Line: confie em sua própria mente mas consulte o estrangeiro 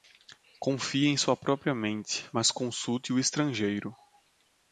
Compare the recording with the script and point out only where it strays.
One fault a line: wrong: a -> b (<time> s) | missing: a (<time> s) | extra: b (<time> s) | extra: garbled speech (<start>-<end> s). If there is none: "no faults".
no faults